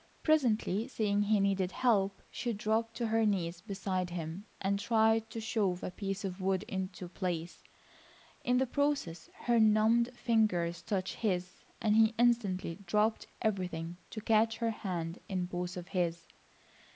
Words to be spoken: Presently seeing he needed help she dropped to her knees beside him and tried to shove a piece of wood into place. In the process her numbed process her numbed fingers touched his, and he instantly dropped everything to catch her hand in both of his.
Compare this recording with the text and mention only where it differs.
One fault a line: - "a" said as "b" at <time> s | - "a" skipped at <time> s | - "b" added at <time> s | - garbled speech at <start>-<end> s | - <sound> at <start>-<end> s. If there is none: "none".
- "process her numbed" skipped at 10.1 s